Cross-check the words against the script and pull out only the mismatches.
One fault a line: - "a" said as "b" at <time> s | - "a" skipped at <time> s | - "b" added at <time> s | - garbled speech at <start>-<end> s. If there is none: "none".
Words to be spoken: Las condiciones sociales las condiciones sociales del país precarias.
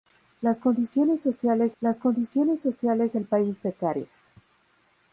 none